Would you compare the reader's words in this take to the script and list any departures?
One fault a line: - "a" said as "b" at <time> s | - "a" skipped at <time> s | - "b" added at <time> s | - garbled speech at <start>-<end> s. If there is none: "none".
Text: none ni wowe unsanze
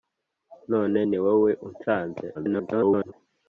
- garbled speech at 2.3-3.1 s